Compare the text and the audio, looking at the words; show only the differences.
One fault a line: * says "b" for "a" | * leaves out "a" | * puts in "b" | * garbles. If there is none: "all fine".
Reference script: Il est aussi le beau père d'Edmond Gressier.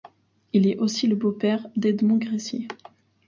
all fine